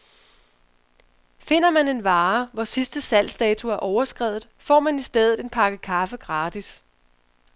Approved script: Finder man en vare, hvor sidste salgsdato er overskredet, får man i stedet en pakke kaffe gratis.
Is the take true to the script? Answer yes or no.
yes